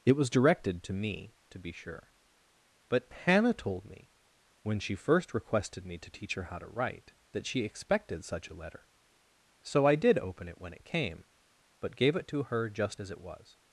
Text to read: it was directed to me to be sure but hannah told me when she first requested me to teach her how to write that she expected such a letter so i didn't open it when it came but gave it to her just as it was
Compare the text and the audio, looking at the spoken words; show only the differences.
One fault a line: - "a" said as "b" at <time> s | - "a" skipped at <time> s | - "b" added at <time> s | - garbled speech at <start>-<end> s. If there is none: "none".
- "didn't" said as "did" at 9.9 s